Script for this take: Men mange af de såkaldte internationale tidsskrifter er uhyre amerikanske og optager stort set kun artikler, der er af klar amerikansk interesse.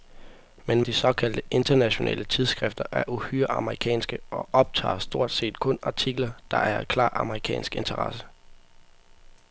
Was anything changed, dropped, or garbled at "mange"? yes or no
yes